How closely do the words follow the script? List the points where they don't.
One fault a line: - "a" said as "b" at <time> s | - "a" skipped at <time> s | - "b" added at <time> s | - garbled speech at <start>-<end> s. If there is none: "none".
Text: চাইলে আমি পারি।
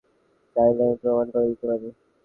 - "প্রমাণ করে দিতে" added at 1.0 s